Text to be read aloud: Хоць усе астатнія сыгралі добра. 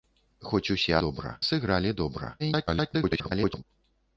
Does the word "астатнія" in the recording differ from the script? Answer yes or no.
yes